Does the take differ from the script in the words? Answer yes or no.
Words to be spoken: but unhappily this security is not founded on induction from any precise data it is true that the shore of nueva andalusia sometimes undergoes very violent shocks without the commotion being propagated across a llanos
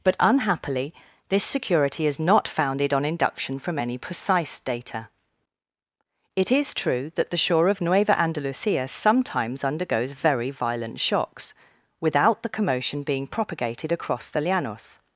yes